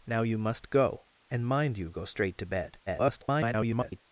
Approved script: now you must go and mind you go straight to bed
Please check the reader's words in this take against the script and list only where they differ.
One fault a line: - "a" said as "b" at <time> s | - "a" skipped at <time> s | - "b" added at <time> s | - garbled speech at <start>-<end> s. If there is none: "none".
- garbled speech at 2.9-4.0 s